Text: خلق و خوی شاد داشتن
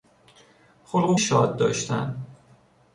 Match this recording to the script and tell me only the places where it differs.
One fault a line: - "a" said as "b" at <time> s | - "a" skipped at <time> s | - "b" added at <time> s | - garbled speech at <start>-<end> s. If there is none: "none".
- "خوی" skipped at 1.1 s